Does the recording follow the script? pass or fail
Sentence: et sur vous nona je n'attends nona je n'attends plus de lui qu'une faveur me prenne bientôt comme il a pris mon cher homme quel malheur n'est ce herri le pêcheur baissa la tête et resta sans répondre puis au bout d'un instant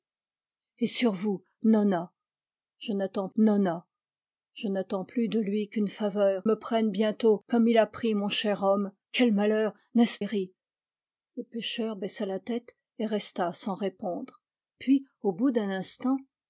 pass